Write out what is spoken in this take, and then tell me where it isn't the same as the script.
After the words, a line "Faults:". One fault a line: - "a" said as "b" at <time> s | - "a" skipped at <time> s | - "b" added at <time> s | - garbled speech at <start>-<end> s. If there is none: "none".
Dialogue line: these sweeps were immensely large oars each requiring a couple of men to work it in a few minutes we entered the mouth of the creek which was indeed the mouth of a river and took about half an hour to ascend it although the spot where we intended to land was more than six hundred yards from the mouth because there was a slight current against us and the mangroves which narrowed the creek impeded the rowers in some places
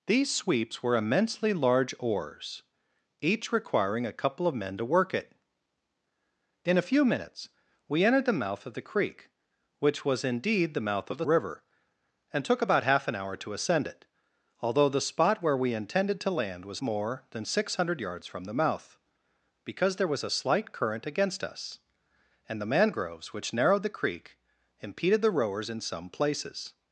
these sweeps were immensely large oars each requiring a couple of men to work it in a few minutes we entered the mouth of the creek which was indeed the mouth of a river and took about half an hour to ascend it although the spot where we intended to land was more than six hundred yards from the mouth because there was a slight current against us and the mangroves which narrowed the creek impeded the rowers in some places
Faults:
none